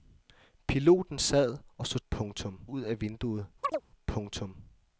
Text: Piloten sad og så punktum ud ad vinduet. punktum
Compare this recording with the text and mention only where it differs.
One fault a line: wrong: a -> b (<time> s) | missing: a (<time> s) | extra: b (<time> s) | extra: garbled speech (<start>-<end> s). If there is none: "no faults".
no faults